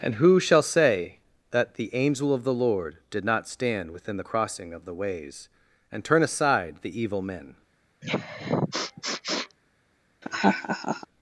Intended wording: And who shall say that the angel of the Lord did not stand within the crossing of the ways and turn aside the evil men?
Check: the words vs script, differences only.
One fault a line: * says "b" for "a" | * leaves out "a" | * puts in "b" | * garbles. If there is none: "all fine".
all fine